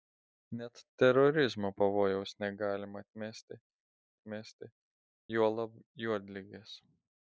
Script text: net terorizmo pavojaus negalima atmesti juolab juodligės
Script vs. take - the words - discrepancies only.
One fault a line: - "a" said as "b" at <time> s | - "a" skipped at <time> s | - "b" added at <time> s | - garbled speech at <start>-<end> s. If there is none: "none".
- "atmesti" added at 4.2 s